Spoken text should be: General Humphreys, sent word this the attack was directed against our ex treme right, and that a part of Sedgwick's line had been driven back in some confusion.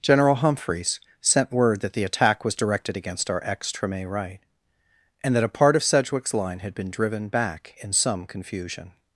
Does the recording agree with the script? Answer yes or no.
no